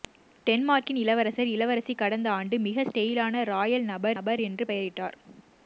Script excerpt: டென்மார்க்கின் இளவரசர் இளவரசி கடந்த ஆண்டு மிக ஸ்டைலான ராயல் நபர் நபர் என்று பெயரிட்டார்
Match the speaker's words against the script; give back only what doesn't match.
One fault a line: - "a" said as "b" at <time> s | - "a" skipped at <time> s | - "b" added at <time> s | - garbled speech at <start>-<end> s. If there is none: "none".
none